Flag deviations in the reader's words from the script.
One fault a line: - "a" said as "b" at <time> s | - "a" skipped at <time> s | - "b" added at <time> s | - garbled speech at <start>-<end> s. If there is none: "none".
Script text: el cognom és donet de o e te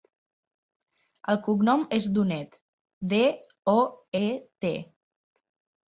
none